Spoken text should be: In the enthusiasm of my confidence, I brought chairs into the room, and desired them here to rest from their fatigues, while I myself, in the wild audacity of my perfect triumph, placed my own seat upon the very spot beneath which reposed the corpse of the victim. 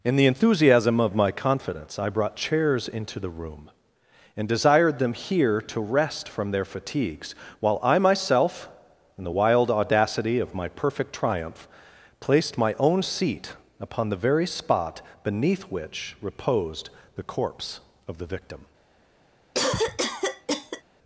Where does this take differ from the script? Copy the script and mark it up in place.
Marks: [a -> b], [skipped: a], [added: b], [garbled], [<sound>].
In the enthusiasm of my confidence, I brought chairs into the room, and desired them here to rest from their fatigues, while I myself, in the wild audacity of my perfect triumph, placed my own seat upon the very spot beneath which reposed the corpse of the victim. [cough]